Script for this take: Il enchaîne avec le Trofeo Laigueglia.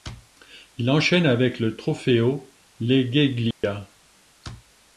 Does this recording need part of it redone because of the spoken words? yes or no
no